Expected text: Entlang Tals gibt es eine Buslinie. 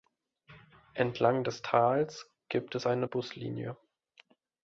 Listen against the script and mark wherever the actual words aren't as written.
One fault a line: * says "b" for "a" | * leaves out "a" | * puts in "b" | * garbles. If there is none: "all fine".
* puts in "des"